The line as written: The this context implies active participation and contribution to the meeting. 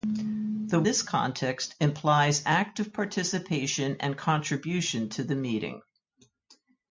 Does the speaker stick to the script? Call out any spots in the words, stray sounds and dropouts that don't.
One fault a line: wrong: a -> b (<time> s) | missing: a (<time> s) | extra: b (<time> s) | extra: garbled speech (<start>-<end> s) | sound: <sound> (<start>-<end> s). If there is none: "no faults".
no faults